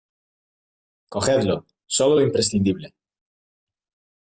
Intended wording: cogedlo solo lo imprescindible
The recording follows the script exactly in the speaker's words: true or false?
true